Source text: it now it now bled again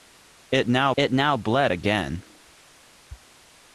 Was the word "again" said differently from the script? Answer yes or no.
no